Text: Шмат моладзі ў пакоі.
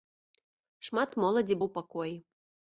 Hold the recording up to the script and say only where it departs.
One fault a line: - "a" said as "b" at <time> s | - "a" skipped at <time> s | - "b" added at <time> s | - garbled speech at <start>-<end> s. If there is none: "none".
none